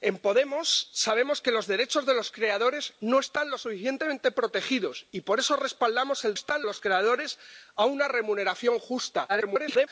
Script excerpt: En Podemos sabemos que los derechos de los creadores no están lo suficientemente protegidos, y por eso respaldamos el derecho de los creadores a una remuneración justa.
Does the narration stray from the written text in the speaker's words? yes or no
yes